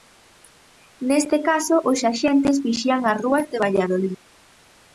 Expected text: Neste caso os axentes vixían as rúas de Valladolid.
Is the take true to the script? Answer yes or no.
yes